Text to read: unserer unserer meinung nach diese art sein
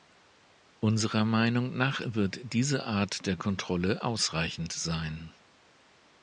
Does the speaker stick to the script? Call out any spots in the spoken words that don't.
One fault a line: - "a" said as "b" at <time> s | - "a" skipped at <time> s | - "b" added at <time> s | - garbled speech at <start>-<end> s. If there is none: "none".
- "unserer" skipped at 1.2 s
- "wird" added at 2.0 s
- "der kontrolle ausreichend" added at 3.3 s